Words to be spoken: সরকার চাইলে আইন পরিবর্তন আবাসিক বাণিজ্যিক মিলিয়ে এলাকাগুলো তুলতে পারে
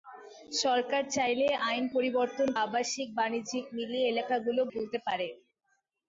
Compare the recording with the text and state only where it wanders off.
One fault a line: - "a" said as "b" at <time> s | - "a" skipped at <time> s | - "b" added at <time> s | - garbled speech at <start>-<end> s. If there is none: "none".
none